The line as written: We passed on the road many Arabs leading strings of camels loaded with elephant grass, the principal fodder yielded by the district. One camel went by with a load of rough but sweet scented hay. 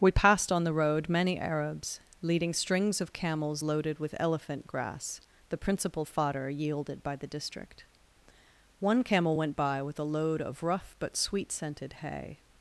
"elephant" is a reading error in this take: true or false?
false